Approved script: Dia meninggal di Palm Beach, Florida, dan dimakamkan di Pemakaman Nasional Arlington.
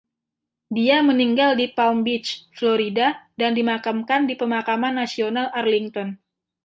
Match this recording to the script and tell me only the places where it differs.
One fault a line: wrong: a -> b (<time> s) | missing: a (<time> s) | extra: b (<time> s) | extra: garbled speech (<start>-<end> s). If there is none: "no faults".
no faults